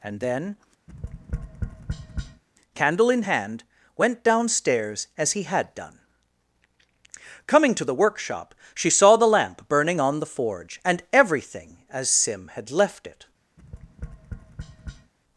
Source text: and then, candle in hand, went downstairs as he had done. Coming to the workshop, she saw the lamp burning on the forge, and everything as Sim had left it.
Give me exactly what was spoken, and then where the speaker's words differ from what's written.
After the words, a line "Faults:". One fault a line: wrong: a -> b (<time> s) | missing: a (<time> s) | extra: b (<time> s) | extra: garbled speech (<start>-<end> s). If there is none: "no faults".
and then, candle in hand, went downstairs as he had done. Coming to the workshop, she saw the lamp burning on the forge, and everything as Sim had left it.
Faults:
no faults